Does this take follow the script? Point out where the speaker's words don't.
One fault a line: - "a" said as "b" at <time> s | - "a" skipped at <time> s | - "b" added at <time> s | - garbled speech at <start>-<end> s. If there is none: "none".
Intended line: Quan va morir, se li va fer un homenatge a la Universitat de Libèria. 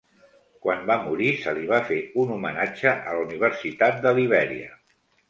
none